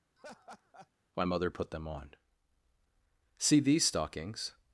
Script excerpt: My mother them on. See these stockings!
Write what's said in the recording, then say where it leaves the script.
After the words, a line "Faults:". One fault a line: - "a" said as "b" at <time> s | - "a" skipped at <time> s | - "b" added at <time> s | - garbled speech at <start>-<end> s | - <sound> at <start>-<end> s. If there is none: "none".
My mother put them on. See these stockings!
Faults:
- laugh at 0.2-0.9 s
- "put" added at 1.5 s